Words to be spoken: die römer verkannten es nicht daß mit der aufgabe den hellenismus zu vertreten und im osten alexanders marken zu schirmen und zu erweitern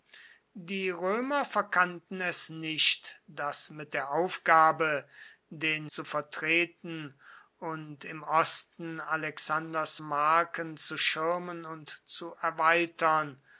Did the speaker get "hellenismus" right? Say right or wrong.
wrong